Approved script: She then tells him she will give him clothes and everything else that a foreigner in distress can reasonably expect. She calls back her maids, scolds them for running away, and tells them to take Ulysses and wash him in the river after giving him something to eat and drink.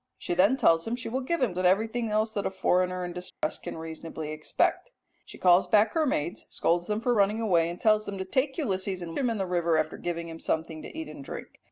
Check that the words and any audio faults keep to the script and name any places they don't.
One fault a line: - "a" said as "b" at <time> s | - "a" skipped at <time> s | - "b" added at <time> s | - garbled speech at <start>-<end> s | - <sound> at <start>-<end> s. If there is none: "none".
- "clothes" skipped at 1.5 s
- dropout at 3.3-3.4 s
- "wash" skipped at 9.2 s